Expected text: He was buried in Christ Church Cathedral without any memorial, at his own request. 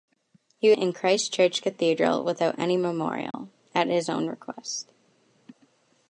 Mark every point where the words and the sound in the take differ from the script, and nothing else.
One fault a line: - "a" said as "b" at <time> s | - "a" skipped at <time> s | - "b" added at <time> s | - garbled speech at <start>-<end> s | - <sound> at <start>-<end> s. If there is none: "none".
- "was buried" skipped at 0.7 s
- dropout at 3.3-3.3 s